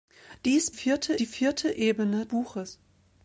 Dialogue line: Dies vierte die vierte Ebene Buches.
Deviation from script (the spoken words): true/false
false